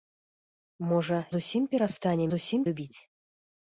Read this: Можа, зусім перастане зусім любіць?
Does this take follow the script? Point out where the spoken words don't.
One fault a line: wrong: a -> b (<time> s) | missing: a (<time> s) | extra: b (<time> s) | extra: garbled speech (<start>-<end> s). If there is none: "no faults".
no faults